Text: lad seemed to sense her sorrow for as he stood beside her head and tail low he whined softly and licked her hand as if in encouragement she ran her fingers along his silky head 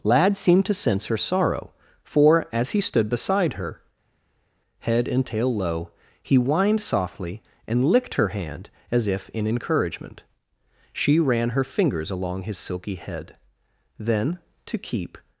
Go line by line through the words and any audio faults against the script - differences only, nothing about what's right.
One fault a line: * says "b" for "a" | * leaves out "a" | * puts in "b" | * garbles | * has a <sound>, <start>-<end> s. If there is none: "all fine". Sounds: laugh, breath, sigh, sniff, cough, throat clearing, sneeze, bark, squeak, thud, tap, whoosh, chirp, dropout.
* puts in "then to keep"